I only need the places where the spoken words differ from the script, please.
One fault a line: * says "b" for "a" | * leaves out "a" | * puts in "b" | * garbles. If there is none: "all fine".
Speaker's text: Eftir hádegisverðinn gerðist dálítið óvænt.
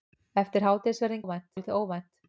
* says "óvænt" for "gerðist"